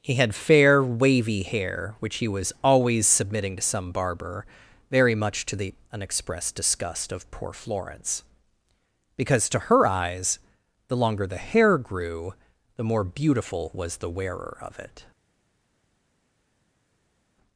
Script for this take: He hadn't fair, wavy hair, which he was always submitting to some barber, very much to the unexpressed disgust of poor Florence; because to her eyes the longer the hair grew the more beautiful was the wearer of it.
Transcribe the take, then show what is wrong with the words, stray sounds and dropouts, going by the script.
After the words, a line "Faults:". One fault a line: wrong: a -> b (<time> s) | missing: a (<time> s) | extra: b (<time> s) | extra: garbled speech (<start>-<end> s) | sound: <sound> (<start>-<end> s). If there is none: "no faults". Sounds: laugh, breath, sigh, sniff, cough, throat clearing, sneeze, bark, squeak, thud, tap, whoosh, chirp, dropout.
He had fair, wavy hair, which he was always submitting to some barber, very much to the unexpressed disgust of poor Florence; because to her eyes the longer the hair grew the more beautiful was the wearer of it.
Faults:
wrong: hadn't -> had (0.1 s)